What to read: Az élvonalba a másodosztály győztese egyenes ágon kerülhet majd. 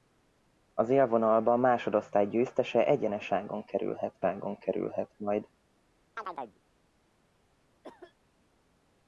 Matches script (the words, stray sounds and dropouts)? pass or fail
fail